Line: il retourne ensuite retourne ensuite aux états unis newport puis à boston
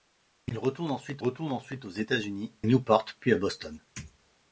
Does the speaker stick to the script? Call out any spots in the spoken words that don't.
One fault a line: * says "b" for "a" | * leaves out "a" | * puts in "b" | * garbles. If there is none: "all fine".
all fine